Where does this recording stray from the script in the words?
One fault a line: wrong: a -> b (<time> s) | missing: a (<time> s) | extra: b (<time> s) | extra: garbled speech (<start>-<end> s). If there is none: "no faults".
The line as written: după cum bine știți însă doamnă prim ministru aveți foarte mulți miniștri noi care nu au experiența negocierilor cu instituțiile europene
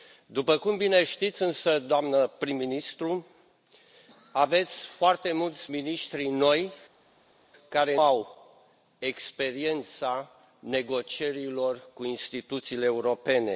missing: nu (8.0 s)